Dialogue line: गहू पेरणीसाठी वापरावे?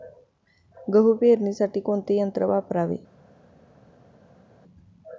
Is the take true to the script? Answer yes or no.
no